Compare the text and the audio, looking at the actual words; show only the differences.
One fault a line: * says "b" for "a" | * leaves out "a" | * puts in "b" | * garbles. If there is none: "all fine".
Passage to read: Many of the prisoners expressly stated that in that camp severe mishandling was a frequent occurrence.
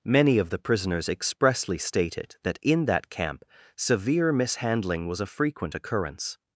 all fine